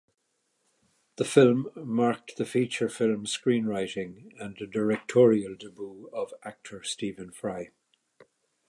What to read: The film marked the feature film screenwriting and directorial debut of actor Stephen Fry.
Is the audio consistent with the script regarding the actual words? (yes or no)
yes